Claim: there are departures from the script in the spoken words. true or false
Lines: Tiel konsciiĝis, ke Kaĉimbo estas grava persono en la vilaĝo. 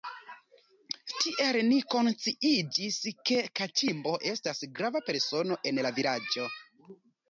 true